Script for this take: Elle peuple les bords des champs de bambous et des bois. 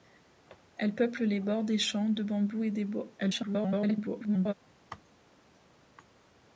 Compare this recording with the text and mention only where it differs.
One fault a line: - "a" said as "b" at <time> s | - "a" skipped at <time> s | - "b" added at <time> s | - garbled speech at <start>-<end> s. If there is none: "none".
- garbled speech at 3.2-4.5 s